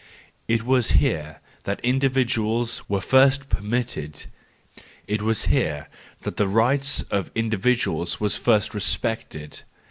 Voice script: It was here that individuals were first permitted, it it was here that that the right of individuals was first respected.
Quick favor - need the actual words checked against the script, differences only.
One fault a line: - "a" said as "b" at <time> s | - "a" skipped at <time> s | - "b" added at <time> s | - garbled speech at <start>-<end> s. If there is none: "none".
- "it" skipped at 5.2 s
- "that" skipped at 6.4 s